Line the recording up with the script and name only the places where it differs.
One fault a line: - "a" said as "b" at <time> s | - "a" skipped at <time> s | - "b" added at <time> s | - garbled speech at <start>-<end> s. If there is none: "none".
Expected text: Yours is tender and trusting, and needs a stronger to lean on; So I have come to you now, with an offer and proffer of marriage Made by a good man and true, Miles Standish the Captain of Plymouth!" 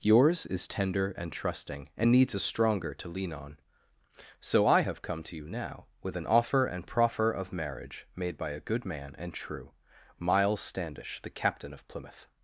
none